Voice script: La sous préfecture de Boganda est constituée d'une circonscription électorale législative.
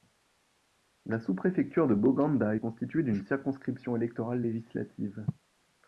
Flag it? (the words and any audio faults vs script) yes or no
no